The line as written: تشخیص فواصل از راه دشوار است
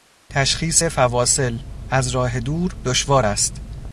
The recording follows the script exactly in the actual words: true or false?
false